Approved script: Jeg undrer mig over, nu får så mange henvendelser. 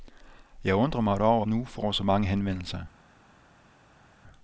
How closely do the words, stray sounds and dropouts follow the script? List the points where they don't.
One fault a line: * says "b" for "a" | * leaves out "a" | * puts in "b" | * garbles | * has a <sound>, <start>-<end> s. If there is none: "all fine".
all fine